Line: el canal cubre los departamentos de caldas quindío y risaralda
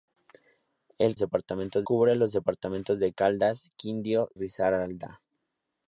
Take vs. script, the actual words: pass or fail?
fail